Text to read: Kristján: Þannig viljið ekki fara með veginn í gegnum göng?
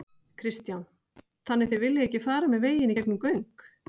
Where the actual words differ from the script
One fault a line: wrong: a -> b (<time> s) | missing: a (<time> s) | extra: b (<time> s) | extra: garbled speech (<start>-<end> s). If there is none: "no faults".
extra: þið (1.7 s)